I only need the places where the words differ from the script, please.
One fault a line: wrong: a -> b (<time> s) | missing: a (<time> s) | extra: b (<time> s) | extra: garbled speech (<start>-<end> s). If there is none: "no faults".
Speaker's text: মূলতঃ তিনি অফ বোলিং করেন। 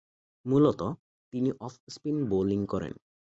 extra: স্পিন (1.9 s)